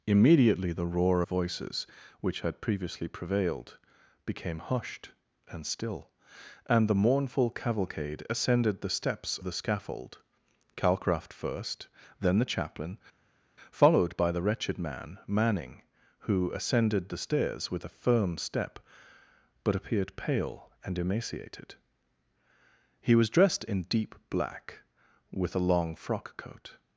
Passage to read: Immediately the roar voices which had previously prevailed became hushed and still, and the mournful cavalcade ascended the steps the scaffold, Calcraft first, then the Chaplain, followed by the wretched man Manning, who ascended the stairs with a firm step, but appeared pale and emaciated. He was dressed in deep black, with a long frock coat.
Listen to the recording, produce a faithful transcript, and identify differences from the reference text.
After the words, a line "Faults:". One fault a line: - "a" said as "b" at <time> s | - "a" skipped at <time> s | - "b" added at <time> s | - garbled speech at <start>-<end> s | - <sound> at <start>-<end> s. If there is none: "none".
Immediately the roar voices which had previously prevailed became hushed and still, and the mournful cavalcade ascended the steps the scaffold, Calcraft first, then the Chaplain, followed by the wretched man Manning, who ascended the stairs with a firm step, but appeared pale and emaciated. He was dressed in deep black, with a long frock coat.
Faults:
none